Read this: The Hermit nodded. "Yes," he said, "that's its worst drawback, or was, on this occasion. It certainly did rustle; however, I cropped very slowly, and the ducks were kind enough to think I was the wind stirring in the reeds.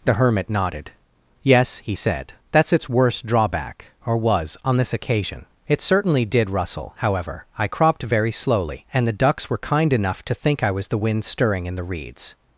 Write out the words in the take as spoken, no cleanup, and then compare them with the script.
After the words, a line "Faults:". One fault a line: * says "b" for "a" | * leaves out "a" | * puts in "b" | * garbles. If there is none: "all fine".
The Hermit nodded. "Yes," he said, "that's its worst drawback, or was, on this occasion. It certainly did rustle; however, I cropped very slowly, and the ducks were kind enough to think I was the wind stirring in the reeds.
Faults:
all fine